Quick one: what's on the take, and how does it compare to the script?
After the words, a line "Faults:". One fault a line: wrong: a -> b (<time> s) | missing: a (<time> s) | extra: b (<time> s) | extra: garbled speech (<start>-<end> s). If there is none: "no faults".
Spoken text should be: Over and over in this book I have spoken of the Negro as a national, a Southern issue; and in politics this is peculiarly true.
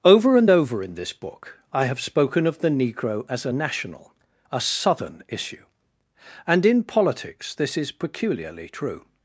Over and over in this book I have spoken of the Negro as a national, a Southern issue; and in politics this is peculiarly true.
Faults:
no faults